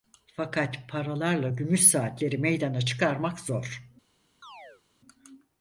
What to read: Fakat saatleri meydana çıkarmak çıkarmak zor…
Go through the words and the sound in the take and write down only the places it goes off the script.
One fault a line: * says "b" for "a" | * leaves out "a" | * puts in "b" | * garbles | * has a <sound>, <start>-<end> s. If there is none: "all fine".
* puts in "paralarla gümüş"
* leaves out "çıkarmak"
* has a chirp, 4.4-4.8 s